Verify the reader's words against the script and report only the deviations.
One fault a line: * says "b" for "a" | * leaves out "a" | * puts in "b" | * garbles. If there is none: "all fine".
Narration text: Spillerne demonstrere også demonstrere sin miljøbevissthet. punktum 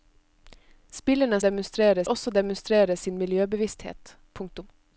all fine